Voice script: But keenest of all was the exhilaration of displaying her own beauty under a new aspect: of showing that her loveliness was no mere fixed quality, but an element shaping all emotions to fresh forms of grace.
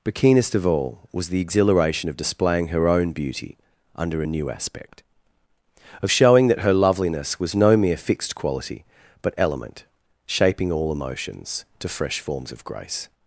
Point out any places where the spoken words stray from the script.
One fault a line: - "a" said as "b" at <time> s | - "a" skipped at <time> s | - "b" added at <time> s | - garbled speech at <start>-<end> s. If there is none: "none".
- "an" skipped at 9.3 s